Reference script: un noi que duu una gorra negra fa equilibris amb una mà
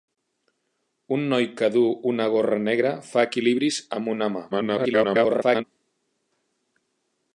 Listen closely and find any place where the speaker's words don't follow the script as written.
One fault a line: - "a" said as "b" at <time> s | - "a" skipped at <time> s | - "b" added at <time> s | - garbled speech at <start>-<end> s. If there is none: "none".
- garbled speech at 4.5-5.6 s